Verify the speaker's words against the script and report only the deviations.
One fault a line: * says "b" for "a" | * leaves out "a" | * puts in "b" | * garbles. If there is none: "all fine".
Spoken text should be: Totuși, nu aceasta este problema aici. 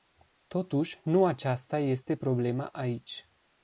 all fine